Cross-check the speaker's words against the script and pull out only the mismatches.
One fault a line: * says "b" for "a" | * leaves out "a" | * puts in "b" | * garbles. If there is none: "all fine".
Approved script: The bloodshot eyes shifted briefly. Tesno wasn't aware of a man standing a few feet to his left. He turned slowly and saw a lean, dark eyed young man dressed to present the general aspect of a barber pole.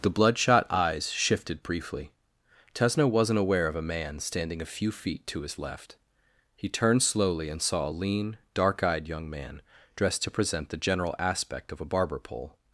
all fine